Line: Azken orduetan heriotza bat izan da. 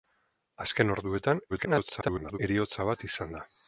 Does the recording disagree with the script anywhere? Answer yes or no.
yes